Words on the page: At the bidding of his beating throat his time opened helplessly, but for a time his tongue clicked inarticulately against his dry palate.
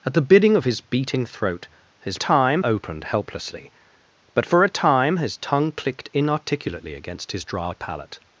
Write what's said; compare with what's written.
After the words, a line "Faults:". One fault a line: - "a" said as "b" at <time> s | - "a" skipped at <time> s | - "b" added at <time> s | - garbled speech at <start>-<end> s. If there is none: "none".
At the bidding of his beating throat his time opened helplessly, but for a time his tongue clicked inarticulately against his dry palate.
Faults:
none